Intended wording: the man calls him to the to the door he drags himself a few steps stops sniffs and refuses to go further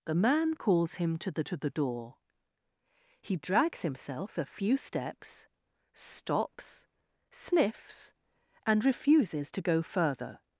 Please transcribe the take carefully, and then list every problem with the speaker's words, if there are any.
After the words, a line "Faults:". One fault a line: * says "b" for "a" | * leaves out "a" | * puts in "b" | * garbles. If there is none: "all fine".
the man calls him to the to the door he drags himself a few steps stops sniffs and refuses to go further
Faults:
all fine